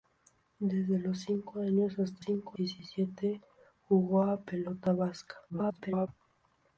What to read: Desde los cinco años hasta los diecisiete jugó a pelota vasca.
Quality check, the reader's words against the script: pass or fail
fail